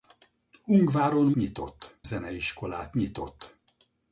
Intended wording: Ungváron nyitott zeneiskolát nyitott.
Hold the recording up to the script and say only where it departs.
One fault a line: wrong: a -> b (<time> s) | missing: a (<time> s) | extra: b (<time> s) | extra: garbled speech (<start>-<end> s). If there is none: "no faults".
no faults